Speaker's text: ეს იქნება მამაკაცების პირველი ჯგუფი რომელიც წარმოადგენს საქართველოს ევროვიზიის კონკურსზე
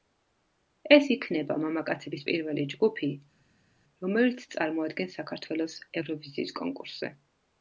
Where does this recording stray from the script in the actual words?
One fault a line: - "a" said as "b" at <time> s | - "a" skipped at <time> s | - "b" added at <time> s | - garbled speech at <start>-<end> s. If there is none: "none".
none